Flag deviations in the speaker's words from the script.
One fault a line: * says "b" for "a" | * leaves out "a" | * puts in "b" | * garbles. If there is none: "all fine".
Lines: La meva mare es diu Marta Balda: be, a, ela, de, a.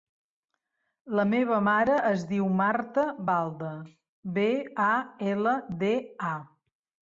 all fine